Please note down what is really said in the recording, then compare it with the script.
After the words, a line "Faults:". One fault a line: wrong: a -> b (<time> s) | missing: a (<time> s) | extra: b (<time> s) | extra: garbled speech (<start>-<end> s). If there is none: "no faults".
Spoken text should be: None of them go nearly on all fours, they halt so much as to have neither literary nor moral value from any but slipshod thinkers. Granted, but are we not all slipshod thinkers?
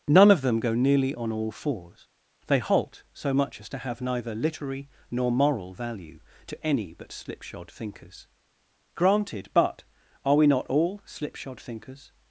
None of them go nearly on all fours, they halt so much as to have neither literary nor moral value to any but slipshod thinkers. Granted, but are we not all slipshod thinkers?
Faults:
wrong: from -> to (6.5 s)